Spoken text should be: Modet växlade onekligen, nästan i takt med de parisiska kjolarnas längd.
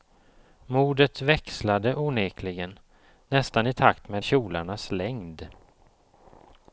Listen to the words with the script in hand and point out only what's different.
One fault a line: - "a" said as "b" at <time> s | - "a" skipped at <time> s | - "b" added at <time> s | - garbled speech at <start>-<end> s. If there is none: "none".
- "de parisiska" skipped at 4.2 s